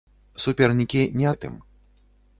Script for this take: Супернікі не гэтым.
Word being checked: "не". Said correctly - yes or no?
yes